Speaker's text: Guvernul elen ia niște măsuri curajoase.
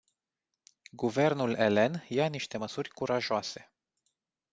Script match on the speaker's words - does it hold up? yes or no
yes